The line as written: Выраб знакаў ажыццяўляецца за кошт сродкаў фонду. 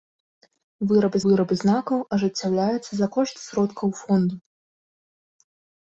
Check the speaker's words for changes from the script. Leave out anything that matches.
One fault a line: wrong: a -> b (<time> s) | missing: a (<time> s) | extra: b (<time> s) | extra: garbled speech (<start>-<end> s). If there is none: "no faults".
extra: выраб (1.3 s)